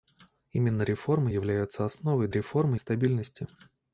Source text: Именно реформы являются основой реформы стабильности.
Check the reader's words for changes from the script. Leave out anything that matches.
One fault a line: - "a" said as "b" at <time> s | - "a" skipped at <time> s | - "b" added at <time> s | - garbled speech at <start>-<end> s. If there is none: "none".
none